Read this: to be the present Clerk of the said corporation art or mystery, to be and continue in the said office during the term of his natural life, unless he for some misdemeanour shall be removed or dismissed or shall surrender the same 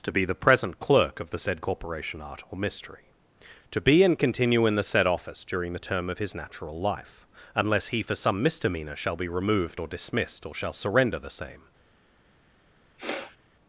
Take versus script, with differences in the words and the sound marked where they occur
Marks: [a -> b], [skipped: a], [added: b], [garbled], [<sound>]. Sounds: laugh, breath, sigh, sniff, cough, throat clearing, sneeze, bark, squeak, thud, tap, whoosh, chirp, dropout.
to be the present Clerk of the said corporation art or mystery, to be and continue in the said office during the term of his natural life, unless he for some misdemeanour shall be removed or dismissed or shall surrender the same [sniff]